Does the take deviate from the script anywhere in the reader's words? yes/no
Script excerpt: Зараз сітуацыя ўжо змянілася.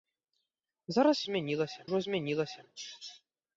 yes